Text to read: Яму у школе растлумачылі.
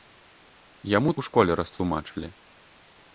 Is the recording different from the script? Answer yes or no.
no